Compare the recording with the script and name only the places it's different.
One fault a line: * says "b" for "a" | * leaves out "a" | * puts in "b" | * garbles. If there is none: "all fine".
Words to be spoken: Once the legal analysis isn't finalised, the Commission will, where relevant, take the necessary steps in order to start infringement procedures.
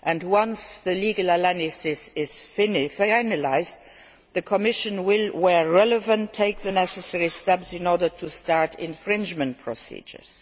* says "is" for "isn't"